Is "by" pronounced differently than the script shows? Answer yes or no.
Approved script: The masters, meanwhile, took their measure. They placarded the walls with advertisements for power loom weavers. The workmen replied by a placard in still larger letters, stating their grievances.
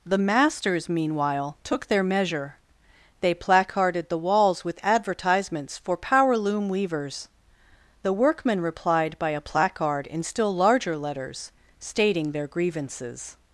no